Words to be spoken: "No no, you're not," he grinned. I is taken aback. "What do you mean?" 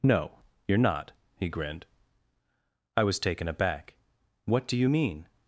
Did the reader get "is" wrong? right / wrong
wrong